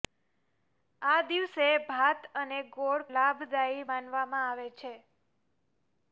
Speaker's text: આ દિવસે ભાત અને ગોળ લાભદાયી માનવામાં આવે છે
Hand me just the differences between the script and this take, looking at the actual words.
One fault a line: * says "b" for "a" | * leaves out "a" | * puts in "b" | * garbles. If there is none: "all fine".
all fine